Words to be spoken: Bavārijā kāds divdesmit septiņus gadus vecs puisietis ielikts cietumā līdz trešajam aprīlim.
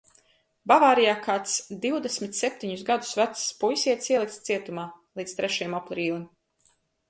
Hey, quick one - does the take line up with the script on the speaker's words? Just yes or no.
yes